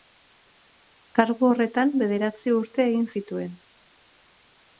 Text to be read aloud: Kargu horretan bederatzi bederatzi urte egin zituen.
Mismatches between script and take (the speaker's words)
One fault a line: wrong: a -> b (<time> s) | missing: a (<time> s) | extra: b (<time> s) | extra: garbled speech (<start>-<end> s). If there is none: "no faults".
missing: bederatzi (2.5 s)